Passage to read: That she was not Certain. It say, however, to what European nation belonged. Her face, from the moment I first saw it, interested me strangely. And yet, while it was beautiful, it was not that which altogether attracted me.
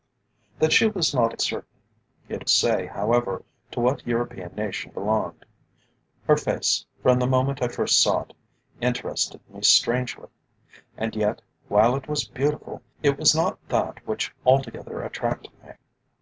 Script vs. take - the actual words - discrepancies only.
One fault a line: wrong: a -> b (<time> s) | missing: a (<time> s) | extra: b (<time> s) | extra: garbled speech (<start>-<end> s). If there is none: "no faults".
no faults